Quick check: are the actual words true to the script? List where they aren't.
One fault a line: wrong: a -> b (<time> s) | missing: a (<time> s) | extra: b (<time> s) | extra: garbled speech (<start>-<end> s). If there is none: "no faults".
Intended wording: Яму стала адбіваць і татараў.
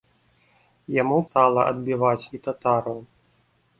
no faults